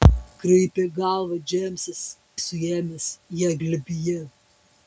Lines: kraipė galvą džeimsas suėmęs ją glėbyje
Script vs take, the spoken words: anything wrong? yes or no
no